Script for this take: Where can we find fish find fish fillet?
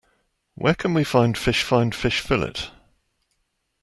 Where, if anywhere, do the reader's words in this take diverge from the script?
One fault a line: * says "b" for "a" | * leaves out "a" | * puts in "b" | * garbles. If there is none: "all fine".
all fine